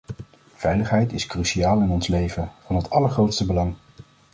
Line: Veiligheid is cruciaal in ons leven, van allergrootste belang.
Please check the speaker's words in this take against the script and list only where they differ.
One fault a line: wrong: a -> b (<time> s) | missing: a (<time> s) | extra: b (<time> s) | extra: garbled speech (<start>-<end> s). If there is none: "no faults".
extra: het (2.8 s)